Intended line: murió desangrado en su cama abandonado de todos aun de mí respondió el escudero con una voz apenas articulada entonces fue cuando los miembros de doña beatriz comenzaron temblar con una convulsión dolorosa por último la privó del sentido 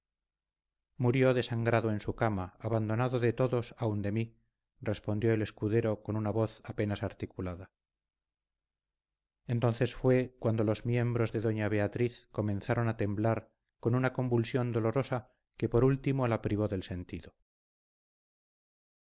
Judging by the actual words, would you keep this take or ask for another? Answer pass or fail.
fail